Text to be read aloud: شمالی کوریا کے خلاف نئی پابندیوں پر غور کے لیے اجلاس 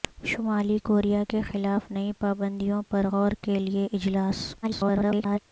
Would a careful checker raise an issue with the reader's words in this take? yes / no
yes